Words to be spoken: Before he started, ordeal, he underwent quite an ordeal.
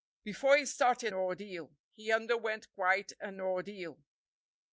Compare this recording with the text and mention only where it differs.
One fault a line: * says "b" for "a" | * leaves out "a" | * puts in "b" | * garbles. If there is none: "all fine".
all fine